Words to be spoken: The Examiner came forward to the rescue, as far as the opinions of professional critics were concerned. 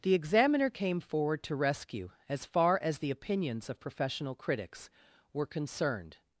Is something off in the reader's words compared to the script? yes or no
yes